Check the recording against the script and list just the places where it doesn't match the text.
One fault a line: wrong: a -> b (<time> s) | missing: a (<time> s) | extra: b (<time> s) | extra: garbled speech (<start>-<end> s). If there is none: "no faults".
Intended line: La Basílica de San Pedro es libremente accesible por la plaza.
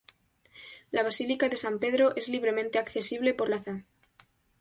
missing: la (3.5 s)